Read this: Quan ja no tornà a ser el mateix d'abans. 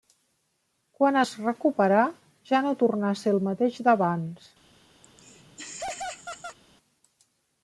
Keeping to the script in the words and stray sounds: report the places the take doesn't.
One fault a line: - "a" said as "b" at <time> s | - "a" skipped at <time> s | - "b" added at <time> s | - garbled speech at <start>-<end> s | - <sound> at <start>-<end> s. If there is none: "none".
- "es recuperà" added at 1.2 s
- laugh at 5.0-6.6 s